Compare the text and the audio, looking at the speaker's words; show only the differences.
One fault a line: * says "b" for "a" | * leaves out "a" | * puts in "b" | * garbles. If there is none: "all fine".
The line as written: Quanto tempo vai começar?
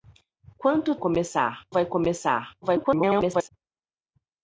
* says "começar" for "tempo"
* garbles